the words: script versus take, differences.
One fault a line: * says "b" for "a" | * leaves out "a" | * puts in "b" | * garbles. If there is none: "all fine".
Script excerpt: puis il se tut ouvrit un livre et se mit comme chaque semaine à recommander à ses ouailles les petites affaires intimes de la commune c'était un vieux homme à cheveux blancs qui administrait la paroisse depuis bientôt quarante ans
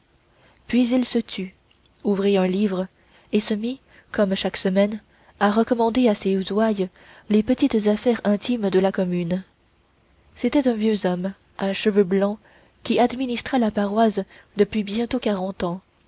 all fine